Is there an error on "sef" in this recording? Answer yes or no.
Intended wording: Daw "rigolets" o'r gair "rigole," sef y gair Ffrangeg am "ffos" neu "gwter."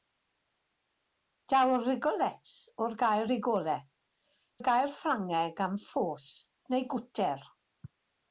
yes